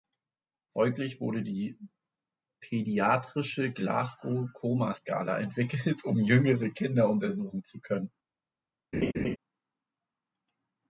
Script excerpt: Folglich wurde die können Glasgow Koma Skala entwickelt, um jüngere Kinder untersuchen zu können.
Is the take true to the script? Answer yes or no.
no